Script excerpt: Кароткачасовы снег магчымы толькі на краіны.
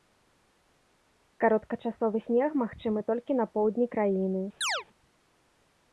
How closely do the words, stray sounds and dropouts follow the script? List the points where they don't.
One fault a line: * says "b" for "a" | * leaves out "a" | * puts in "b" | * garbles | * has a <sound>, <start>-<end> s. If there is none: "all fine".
* puts in "поўдні"
* has a chirp, 4.6-4.8 s